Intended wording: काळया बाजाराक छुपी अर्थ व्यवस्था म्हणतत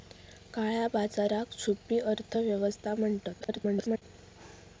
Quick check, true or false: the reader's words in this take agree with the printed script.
false